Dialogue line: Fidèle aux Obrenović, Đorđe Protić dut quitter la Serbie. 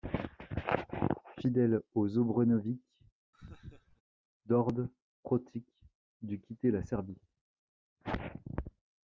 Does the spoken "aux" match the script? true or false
true